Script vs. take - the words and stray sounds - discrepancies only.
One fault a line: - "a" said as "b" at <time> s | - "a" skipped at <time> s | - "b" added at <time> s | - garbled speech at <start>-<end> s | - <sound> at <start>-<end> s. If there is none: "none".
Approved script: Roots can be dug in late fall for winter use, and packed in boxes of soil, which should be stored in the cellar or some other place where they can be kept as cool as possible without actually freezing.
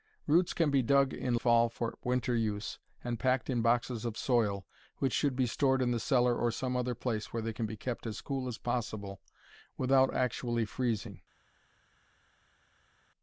- "late" skipped at 1.4 s